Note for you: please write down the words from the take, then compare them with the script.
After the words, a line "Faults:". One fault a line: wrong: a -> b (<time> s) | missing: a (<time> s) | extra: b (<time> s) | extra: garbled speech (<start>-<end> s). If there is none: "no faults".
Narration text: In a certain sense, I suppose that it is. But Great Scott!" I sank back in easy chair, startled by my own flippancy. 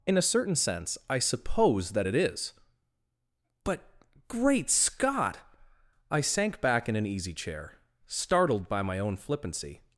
In a certain sense, I suppose that it is. But Great Scott!" I sank back in an easy chair, startled by my own flippancy.
Faults:
extra: an (6.9 s)